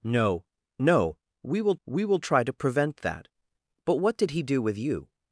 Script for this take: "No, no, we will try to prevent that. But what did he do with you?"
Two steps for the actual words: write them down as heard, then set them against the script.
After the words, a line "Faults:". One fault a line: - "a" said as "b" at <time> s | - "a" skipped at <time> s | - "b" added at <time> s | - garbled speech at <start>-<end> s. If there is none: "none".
"No, no, we will we will try to prevent that. But what did he do with you?"
Faults:
- "we will" added at 1.8 s